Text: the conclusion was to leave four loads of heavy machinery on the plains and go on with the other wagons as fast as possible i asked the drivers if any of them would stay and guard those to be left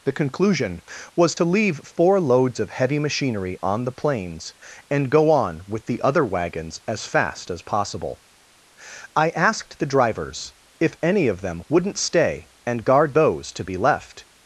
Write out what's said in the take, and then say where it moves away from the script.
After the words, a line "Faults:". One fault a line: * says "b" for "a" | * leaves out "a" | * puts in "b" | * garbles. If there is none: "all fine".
the conclusion was to leave four loads of heavy machinery on the plains and go on with the other wagons as fast as possible i asked the drivers if any of them wouldn't stay and guard those to be left
Faults:
* says "wouldn't" for "would"